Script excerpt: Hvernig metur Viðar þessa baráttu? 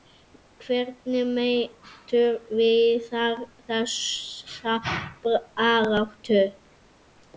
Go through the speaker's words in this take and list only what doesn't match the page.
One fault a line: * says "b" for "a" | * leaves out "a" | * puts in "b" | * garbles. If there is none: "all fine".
all fine